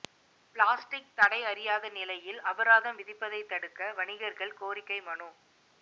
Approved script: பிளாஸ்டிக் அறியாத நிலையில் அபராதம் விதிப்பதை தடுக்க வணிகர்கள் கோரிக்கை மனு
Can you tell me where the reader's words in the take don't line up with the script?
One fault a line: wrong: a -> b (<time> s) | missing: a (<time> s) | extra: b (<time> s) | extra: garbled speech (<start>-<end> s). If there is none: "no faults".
extra: தடை (1.1 s)